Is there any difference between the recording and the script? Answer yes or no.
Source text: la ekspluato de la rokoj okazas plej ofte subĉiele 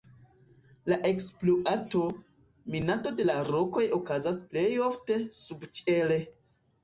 yes